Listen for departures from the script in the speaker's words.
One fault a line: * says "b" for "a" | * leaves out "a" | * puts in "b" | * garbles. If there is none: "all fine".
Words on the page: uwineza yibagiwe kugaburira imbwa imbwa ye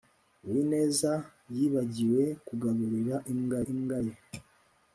all fine